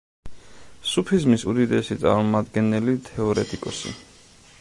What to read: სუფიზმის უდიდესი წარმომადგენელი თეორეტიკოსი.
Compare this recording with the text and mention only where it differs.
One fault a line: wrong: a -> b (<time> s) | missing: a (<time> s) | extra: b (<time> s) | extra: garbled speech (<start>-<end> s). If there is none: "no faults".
no faults